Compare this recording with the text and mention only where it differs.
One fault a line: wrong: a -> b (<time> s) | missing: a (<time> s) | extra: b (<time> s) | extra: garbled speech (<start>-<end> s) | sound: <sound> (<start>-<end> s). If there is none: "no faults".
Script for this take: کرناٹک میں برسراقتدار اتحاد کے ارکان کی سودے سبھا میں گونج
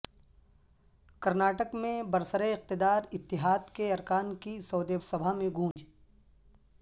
sound: dropout (5.7-5.8 s)